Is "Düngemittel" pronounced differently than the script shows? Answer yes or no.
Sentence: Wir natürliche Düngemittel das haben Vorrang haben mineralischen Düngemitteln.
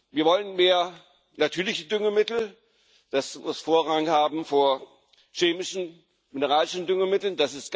no